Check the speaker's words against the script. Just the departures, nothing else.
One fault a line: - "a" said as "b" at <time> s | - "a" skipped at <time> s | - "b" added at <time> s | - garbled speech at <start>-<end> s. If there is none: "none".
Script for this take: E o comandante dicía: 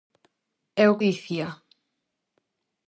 - "comandante" skipped at 1.0 s